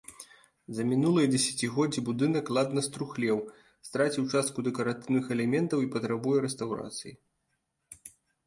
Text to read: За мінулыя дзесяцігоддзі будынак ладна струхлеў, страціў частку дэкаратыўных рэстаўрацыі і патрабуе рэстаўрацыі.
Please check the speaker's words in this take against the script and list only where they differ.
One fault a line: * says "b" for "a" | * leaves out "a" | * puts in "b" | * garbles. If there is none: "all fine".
* says "элементаў" for "рэстаўрацыі"